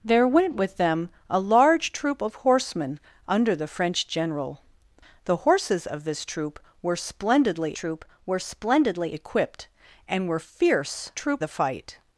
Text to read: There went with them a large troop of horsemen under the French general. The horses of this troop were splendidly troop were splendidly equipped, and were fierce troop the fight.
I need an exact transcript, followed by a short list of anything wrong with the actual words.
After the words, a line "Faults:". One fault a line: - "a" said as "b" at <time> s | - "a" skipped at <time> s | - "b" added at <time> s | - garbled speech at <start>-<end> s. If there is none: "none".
There went with them a large troop of horsemen under the French general. The horses of this troop were splendidly troop were splendidly equipped, and were fierce troop the fight.
Faults:
none